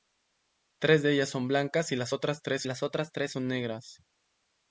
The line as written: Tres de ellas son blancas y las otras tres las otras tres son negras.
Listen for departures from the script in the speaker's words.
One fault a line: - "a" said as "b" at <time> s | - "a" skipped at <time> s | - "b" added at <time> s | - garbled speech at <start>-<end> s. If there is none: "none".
none